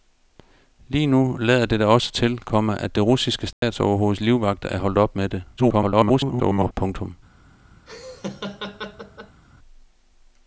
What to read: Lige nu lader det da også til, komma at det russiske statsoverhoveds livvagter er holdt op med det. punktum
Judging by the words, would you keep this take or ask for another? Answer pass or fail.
fail